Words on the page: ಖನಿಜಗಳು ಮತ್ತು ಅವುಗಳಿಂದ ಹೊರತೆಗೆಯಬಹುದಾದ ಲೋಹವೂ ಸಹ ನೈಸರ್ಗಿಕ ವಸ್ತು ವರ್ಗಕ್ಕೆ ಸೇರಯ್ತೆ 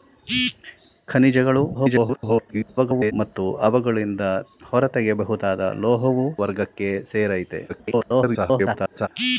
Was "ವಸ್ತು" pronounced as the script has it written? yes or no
no